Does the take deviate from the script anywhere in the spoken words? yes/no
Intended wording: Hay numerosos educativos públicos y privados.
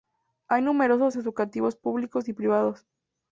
no